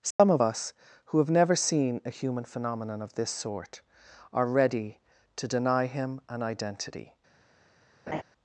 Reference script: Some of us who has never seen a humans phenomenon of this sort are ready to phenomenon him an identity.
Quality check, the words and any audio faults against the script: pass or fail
fail